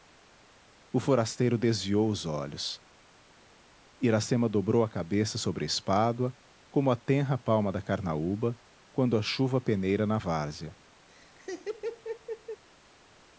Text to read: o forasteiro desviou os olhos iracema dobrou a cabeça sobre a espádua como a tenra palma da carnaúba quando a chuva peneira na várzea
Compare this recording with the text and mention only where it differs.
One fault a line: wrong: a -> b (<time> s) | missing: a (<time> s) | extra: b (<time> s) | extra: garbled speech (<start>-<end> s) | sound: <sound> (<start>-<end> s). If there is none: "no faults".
sound: laugh (11.1-12.6 s)